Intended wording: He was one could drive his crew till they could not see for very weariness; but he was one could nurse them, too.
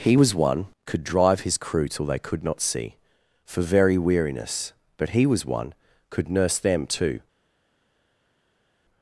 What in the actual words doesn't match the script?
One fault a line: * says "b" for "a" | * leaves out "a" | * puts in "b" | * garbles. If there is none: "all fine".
all fine